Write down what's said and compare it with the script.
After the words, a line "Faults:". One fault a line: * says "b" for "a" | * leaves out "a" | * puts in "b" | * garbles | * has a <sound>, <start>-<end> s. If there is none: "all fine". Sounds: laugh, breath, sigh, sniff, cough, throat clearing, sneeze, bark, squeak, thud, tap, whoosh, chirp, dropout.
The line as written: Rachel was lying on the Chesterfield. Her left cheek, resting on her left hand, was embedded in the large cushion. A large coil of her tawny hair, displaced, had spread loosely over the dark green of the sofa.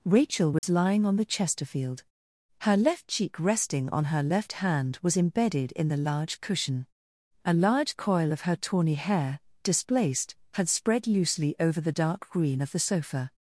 Rachel was lying on the Chesterfield. Her left cheek, resting on her left hand, was embedded in the large cushion. A large coil of her tawny hair, displaced, had spread loosely over the dark green of the sofa.
Faults:
* has a dropout, 0.6-0.6 s